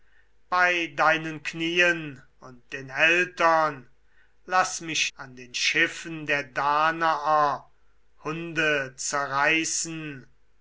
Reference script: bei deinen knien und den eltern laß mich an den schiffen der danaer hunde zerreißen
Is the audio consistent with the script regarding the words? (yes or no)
yes